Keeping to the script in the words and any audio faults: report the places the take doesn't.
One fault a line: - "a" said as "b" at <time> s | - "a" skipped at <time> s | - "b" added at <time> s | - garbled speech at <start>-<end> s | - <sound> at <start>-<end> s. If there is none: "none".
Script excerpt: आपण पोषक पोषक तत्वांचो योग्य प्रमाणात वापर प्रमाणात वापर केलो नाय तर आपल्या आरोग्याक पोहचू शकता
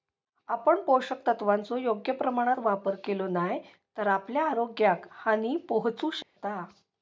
- "पोषक" skipped at 1.3 s
- "प्रमाणात वापर" skipped at 3.0 s
- "हानी" added at 5.1 s
- dropout at 6.2-6.4 s